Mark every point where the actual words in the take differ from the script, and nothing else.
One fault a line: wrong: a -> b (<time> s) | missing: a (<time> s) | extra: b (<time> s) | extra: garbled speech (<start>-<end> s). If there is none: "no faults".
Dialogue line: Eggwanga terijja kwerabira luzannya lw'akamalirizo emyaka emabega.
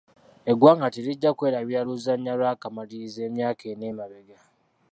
extra: ena (3.7 s)